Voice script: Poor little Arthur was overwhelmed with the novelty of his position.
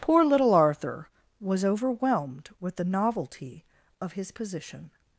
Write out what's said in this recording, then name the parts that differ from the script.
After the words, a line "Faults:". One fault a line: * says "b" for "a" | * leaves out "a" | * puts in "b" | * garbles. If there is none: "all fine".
Poor little Arthur was overwhelmed with the novelty of his position.
Faults:
all fine